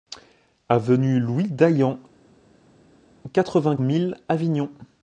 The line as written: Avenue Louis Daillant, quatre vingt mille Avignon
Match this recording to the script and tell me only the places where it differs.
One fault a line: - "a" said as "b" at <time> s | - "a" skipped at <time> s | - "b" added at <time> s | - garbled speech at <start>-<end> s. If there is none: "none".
none